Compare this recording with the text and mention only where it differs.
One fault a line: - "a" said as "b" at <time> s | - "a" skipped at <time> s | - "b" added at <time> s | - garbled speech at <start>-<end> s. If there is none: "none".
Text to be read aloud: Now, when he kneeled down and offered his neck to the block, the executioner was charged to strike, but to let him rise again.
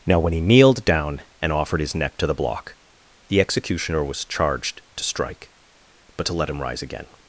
none